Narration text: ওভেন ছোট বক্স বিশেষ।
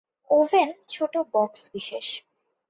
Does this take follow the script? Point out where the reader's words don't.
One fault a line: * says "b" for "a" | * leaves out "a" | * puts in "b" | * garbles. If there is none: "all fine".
all fine